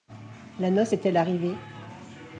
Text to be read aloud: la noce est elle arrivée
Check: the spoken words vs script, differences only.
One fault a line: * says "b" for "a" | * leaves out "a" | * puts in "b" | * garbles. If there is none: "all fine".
all fine